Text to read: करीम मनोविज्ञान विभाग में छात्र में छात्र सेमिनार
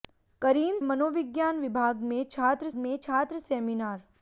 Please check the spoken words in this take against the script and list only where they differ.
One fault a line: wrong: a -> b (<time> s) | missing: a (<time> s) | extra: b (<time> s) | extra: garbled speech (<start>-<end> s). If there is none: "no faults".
no faults